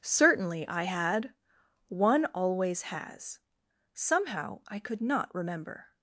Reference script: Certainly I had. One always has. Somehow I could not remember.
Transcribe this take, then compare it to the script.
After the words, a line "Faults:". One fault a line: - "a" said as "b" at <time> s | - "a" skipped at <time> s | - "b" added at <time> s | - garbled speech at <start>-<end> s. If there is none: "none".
Certainly I had. One always has. Somehow I could not remember.
Faults:
none